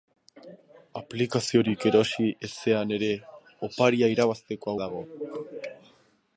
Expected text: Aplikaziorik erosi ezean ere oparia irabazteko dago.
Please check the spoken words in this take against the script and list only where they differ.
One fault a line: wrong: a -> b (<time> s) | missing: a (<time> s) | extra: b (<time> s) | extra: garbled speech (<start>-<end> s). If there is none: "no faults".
no faults